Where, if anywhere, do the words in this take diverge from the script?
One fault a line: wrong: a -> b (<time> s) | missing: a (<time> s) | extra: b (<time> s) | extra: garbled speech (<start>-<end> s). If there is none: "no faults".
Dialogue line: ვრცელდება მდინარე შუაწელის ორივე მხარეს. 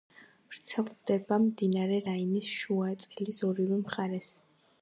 extra: რაინის (2.1 s)